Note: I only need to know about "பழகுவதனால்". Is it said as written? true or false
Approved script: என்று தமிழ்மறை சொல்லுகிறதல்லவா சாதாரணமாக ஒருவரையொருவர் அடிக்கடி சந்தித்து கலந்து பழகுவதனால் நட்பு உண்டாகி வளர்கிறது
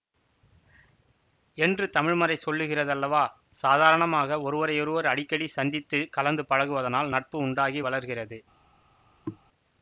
true